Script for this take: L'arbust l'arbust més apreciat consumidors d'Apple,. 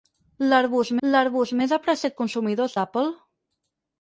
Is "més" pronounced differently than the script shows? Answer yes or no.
no